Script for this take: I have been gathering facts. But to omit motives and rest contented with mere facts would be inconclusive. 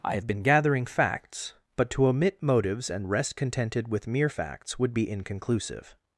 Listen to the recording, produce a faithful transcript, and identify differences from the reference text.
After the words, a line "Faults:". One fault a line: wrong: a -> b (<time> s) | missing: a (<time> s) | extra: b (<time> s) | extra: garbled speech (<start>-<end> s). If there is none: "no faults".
I have been gathering facts. But to omit motives and rest contented with mere facts would be inconclusive.
Faults:
no faults